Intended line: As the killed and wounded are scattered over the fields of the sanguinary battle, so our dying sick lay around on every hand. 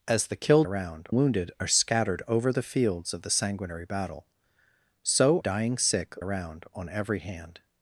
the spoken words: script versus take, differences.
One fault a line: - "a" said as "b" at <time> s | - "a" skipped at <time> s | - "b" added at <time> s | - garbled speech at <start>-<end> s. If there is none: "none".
- "and" said as "around" at 0.6 s
- "our" skipped at 5.4 s
- "lay" skipped at 6.2 s